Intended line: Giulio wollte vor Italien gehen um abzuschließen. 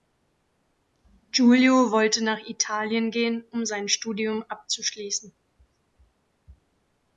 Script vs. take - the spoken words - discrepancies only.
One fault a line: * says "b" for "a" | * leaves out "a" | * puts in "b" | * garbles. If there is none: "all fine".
* says "nach" for "vor"
* puts in "sein Studium"